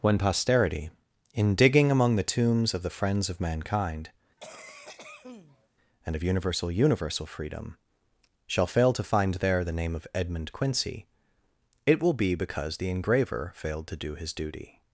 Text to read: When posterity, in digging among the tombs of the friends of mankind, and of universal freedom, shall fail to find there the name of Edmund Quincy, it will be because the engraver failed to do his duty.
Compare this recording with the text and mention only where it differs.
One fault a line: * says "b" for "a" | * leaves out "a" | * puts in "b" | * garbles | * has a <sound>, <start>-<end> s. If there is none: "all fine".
* has a cough, 4.4-5.7 s
* puts in "universal"